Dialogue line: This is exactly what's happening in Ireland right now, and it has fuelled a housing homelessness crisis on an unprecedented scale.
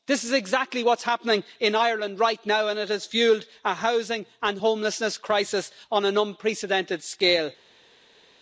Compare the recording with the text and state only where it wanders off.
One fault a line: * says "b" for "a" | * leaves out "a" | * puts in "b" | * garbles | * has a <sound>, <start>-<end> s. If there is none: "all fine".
* puts in "and"